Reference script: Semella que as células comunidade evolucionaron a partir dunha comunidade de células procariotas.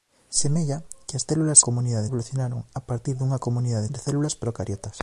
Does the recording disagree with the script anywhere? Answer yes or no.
no